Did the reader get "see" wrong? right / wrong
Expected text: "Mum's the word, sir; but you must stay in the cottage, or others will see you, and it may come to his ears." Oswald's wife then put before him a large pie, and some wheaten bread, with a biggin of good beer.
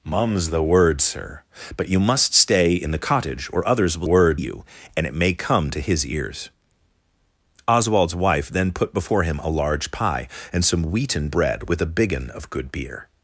wrong